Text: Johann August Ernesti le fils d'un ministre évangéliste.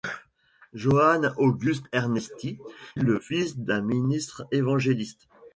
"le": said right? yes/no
yes